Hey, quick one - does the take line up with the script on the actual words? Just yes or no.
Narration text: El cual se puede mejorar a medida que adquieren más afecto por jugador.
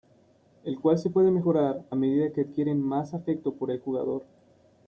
no